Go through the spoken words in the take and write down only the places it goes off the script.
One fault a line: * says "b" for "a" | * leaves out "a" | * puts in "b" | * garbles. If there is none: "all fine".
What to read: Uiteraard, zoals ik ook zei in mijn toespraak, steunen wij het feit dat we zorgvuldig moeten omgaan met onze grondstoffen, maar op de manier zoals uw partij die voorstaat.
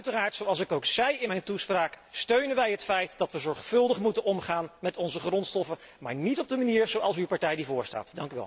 * puts in "niet"